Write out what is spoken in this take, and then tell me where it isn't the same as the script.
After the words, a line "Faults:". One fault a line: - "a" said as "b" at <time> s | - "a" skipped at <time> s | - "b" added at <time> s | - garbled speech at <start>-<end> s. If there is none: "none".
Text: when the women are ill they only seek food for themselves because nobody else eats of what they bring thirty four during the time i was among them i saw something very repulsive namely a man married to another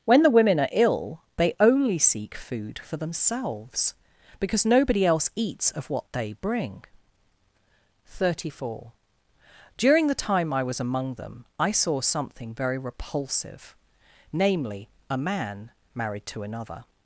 when the women are ill they only seek food for themselves because nobody else eats of what they bring thirty four during the time i was among them i saw something very repulsive namely a man married to another
Faults:
none